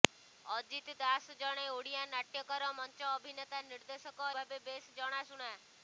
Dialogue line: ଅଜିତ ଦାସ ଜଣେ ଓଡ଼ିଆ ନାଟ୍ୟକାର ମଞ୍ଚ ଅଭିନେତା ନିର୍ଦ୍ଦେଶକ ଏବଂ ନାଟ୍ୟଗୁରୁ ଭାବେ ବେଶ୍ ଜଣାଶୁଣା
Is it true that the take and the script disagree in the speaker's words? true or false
true